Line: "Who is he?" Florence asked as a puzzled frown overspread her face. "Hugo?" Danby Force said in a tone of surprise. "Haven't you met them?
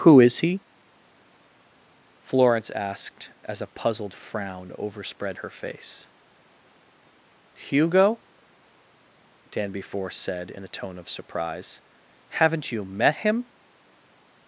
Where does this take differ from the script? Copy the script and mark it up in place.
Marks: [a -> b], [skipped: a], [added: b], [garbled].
"Who is he?" Florence asked as a puzzled frown overspread her face. "Hugo?" Danby Force said in a tone of surprise. "Haven't you met [them? -> him]